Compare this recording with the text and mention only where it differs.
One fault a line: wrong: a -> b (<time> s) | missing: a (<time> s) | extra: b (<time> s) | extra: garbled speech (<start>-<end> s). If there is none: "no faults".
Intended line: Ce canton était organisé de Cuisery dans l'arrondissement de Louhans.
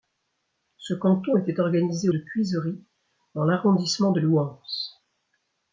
no faults